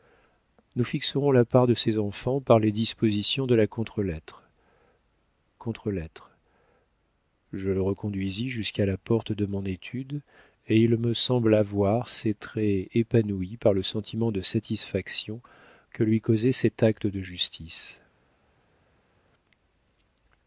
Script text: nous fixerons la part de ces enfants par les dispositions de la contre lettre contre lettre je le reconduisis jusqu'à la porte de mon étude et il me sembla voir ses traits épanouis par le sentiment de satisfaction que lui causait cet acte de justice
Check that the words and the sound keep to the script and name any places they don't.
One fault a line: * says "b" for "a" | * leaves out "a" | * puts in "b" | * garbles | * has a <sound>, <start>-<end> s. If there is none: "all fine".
all fine